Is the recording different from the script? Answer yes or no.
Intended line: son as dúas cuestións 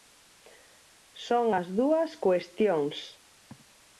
no